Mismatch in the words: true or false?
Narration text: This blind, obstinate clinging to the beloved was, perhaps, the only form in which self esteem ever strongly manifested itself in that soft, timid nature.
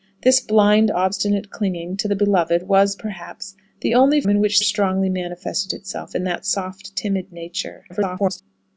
true